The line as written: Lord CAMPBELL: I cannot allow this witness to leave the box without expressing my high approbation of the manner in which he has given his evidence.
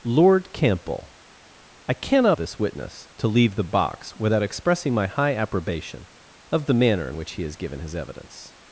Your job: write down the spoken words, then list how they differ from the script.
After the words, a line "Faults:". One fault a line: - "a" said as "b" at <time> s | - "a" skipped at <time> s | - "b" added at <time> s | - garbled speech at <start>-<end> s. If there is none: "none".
Lord CAMPBELL: I cannot this witness to leave the box without expressing my high approbation of the manner in which he has given his evidence.
Faults:
- "allow" skipped at 2.4 s